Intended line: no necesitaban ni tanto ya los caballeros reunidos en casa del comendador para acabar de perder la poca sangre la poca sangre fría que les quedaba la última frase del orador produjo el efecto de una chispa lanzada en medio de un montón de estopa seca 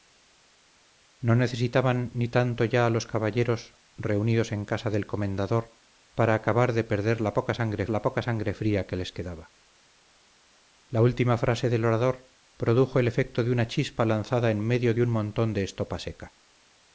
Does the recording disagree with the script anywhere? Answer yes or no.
no